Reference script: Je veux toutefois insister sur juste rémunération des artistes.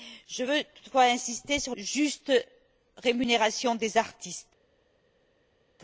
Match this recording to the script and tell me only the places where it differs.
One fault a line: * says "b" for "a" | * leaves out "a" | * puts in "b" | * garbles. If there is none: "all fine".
all fine